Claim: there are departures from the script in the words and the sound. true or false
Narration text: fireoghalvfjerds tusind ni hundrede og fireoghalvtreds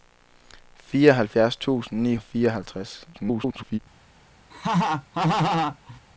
true